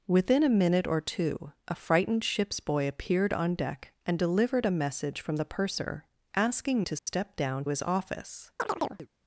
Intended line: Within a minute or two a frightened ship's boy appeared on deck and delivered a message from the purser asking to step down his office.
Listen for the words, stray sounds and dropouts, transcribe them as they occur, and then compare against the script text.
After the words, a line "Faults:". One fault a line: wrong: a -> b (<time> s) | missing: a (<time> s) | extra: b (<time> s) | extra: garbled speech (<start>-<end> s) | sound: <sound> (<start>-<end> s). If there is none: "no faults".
Within a minute or two a frightened ship's boy appeared on deck and delivered a message from the purser asking to step down his office.
Faults:
sound: dropout (7.0-7.1 s)
sound: chirp (8.6-9.1 s)